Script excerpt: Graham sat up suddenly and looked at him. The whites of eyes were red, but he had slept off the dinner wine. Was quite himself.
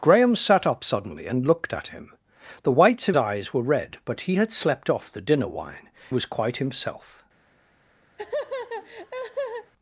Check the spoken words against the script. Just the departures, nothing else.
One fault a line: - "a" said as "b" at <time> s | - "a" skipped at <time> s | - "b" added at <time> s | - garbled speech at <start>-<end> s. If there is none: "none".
none